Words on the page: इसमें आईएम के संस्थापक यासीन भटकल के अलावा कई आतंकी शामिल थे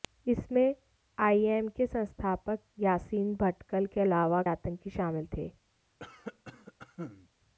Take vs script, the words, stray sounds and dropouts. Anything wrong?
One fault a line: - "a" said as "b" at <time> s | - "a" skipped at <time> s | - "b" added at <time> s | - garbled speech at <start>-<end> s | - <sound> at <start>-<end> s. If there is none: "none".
- "कई" skipped at 4.4 s
- cough at 6.0-7.3 s